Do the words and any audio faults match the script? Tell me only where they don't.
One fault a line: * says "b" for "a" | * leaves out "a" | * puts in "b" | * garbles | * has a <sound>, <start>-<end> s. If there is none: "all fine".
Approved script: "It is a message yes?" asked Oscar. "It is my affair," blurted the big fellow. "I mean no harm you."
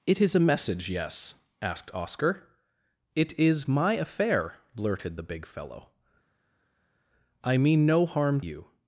all fine